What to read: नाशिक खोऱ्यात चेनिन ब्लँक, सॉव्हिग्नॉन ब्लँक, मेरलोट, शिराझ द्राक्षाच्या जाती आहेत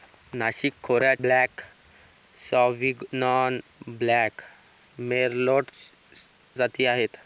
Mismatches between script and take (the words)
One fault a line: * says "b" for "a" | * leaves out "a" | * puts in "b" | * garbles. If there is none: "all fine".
* leaves out "चेनिन"
* leaves out "शिराझ द्राक्षाच्या"